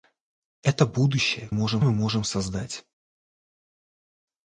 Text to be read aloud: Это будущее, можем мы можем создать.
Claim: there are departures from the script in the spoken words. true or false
false